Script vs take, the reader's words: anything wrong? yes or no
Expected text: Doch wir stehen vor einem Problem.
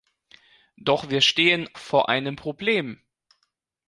no